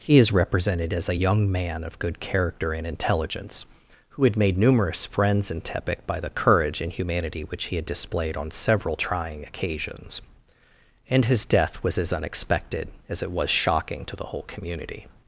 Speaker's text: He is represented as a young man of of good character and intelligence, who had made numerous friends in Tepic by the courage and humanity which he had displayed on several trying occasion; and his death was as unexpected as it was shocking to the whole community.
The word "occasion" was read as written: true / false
false